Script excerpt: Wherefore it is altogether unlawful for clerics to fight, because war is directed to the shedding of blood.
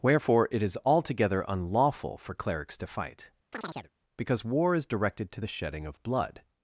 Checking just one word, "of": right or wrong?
right